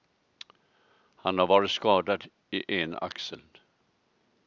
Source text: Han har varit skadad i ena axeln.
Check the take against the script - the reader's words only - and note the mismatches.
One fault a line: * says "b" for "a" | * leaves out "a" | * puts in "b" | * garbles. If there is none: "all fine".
all fine